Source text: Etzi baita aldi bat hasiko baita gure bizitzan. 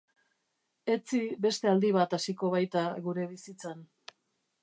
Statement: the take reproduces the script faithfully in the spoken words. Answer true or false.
false